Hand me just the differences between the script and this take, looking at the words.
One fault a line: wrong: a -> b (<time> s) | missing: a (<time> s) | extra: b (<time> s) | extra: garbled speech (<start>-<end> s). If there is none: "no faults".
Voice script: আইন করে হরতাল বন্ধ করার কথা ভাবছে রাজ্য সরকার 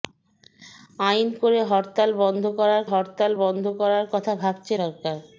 extra: হরতাল বন্ধ করার (2.9 s)
missing: রাজ্য (4.7 s)